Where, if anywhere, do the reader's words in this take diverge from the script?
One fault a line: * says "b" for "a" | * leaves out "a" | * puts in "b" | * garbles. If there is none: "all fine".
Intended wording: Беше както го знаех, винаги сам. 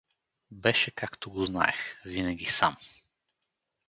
all fine